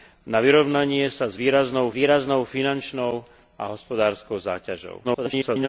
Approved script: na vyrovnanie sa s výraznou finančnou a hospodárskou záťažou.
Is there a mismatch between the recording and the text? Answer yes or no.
yes